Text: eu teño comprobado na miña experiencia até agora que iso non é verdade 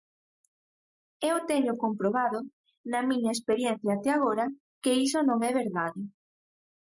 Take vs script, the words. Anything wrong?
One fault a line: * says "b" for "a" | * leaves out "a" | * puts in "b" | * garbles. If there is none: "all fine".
all fine